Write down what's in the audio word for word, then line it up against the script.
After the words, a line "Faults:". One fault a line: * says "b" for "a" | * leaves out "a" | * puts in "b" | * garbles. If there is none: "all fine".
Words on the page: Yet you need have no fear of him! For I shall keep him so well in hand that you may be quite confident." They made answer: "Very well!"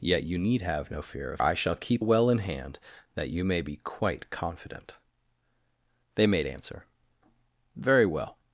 Yet you need have no fear of I shall keep well in hand that you may be quite confident." They made answer: "Very well!"
Faults:
* leaves out "him For"
* leaves out "him so"